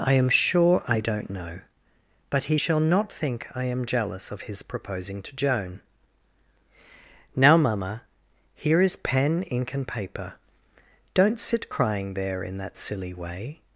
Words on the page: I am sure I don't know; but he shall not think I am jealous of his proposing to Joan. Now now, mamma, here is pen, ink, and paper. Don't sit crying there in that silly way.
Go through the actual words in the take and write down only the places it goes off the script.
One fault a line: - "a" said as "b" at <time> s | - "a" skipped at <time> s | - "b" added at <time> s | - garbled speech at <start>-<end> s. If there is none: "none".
- "now" skipped at 7.6 s